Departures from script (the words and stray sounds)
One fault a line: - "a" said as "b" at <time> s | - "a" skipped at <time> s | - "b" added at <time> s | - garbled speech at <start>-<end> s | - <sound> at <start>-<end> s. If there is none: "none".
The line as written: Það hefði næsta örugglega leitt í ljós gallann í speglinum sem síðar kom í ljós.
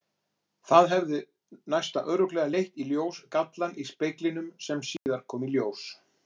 - dropout at 5.0-5.1 s